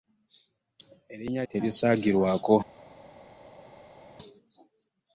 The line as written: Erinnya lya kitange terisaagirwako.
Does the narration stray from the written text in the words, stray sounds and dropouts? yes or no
yes